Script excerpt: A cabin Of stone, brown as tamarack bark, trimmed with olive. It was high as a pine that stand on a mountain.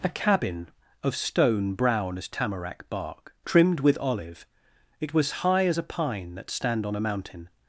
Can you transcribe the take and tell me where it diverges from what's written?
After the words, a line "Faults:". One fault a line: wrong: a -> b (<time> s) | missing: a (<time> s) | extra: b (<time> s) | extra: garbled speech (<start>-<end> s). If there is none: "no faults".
A cabin Of stone, brown as tamarack bark, trimmed with olive. It was high as a pine that stand on a mountain.
Faults:
no faults